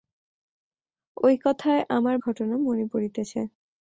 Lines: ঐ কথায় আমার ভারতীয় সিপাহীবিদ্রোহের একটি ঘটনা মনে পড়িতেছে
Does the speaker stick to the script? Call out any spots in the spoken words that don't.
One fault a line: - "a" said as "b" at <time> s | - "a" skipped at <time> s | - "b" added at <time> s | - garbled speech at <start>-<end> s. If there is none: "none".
- "ভারতীয় সিপাহীবিদ্রোহের একটি" skipped at 2.1 s